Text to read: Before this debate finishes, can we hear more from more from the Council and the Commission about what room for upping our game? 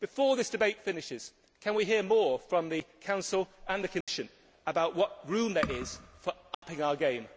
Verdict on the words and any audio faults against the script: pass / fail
fail